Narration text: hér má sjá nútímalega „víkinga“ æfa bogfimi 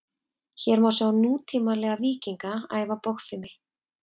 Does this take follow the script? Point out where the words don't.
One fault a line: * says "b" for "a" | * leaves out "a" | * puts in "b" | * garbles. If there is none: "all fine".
all fine